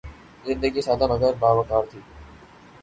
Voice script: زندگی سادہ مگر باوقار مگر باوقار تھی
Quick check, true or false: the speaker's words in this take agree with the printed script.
false